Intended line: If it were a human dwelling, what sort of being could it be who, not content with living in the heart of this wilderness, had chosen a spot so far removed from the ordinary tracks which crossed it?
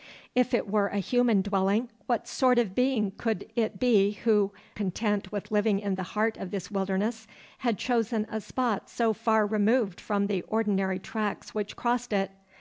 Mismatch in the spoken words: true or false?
true